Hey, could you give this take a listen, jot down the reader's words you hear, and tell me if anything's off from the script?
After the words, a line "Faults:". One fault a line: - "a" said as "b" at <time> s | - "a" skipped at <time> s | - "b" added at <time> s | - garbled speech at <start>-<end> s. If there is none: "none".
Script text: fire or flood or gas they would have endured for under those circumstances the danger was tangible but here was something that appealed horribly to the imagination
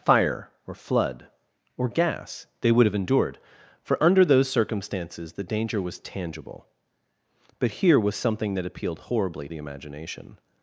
fire or flood or gas they would have endured for under those circumstances the danger was tangible but here was something that appealed horribly the imagination
Faults:
- "to" skipped at 9.5 s